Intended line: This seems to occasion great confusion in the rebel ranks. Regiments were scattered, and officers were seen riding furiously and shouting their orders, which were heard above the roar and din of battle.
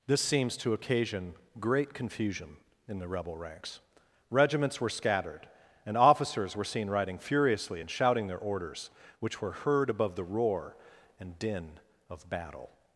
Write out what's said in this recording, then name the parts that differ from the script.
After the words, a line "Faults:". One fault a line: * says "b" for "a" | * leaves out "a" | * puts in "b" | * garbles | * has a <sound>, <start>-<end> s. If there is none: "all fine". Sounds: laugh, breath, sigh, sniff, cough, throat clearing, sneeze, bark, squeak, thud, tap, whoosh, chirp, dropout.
This seems to occasion great confusion in the rebel ranks. Regiments were scattered, and officers were seen riding furiously and shouting their orders, which were heard above the roar and din of battle.
Faults:
all fine